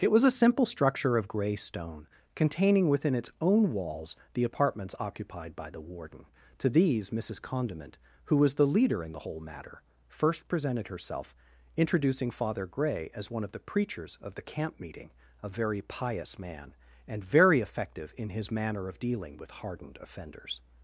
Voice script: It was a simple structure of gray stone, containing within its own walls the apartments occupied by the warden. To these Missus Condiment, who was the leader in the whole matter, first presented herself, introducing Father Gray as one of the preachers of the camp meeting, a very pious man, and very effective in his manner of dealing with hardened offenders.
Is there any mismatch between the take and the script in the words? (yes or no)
no